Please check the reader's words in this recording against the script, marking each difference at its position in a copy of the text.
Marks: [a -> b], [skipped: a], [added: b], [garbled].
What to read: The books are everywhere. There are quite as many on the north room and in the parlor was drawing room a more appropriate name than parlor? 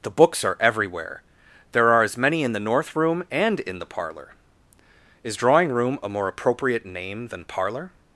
The books are everywhere. There are [skipped: quite] as many [on -> in] the north room and in the parlor [was -> is] drawing room a more appropriate name than parlor?